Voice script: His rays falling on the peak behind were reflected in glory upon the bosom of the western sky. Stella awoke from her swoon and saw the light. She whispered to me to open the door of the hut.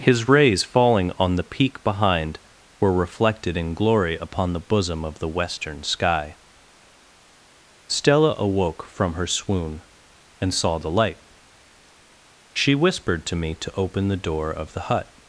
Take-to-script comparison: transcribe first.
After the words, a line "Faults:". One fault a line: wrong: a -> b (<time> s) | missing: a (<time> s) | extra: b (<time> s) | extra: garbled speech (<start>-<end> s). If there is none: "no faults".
His rays falling on the peak behind were reflected in glory upon the bosom of the western sky. Stella awoke from her swoon and saw the light. She whispered to me to open the door of the hut.
Faults:
no faults